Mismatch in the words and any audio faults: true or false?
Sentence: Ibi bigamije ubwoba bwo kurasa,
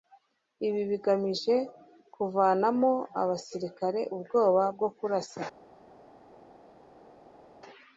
true